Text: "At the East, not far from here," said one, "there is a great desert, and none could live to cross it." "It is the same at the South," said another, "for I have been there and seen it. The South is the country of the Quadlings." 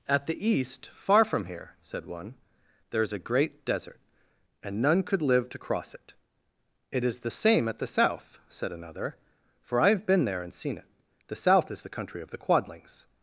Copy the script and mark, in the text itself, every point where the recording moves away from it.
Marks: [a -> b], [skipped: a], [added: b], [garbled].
"At the East, [skipped: not] far from here," said one, "there is a great desert, and none could live to cross it." "It is the same at the South," said another, "for I have been there and seen it. The South is the country of the Quadlings."